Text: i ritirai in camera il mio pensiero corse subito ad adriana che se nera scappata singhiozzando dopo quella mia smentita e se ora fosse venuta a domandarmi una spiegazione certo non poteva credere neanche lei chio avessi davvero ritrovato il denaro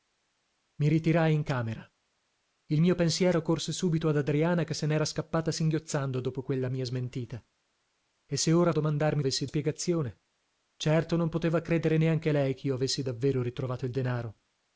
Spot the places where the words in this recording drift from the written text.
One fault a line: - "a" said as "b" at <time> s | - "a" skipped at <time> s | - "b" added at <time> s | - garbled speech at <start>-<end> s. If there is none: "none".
- "fosse venuta" skipped at 8.7 s
- "una" said as "avessi" at 9.2 s